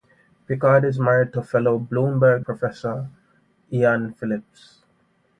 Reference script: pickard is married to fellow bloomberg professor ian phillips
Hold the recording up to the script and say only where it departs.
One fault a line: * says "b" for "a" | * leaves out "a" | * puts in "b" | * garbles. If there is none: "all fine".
all fine